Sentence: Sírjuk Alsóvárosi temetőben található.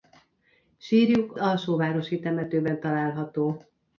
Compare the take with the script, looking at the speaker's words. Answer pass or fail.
pass